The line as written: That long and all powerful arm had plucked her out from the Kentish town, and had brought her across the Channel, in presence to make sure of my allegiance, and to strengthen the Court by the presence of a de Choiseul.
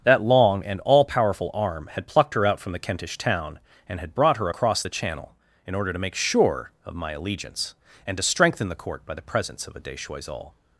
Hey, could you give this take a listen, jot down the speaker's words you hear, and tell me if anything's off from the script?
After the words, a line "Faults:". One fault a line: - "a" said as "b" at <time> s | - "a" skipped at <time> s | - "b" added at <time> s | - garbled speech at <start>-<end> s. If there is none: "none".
That long and all powerful arm had plucked her out from the Kentish town, and had brought her across the Channel, in order to make sure of my allegiance, and to strengthen the Court by the presence of a de Choiseul.
Faults:
- "presence" said as "order" at 5.7 s